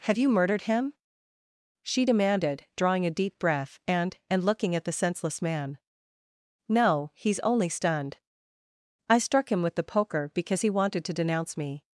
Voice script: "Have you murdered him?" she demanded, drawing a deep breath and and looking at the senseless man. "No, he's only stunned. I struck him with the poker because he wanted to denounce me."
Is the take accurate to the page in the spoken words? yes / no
yes